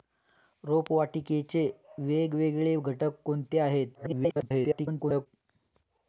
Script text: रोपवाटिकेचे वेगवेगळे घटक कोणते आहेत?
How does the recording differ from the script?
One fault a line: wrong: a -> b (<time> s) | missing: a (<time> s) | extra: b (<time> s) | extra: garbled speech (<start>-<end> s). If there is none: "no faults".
extra: garbled speech (3.9-5.3 s)